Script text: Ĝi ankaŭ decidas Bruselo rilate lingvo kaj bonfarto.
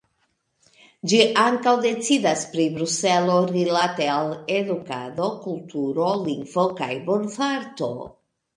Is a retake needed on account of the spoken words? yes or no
yes